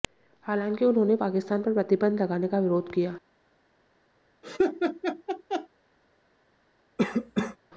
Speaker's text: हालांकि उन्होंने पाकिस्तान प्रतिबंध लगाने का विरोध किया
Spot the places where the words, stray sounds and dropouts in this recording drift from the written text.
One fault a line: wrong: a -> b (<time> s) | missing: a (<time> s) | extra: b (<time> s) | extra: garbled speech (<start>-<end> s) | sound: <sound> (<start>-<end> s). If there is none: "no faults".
extra: पर (1.6 s)
sound: laugh (4.4-5.7 s)
sound: cough (7.0-7.6 s)